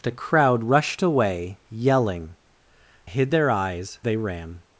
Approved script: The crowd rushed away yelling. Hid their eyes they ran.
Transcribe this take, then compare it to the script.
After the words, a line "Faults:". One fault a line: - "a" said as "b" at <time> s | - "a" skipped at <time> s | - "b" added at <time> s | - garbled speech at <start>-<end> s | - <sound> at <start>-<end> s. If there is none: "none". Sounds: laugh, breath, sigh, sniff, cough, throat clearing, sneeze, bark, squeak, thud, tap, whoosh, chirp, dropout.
The crowd rushed away yelling. Hid their eyes they ran.
Faults:
none